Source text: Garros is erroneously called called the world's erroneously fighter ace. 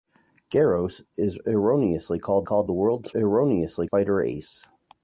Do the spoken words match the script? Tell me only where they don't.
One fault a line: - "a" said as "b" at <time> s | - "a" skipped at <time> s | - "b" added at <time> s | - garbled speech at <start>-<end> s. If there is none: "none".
none